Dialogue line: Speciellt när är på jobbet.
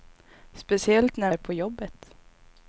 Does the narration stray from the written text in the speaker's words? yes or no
no